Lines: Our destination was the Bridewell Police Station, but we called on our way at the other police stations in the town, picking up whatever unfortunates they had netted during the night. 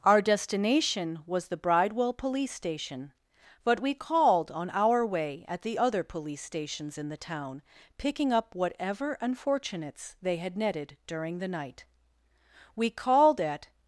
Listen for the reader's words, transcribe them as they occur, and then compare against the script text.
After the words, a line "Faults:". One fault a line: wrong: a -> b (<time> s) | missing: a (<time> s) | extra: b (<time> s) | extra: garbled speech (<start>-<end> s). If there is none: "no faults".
Our destination was the Bridewell Police Station, but we called on our way at the other police stations in the town, picking up whatever unfortunates they had netted during the night. We called at
Faults:
extra: We called at (12.7 s)